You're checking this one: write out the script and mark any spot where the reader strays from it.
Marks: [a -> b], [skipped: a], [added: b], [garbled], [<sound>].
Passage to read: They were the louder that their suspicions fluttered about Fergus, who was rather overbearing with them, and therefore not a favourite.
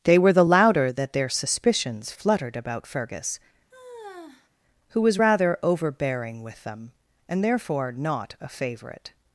They were the louder that their suspicions fluttered about Fergus, [sigh] who was rather overbearing with them, and therefore not a favourite.